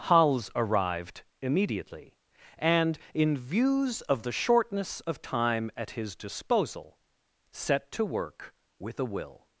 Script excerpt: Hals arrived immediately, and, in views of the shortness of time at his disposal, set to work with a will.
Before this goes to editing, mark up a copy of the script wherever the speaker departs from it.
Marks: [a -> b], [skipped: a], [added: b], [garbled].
Hals arrived immediately, and, in views of the shortness of time at his disposal, set to work with a will.